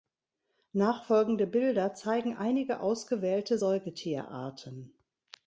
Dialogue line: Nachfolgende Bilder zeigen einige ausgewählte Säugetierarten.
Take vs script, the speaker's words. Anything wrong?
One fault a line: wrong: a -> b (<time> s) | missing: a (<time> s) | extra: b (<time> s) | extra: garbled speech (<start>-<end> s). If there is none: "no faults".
no faults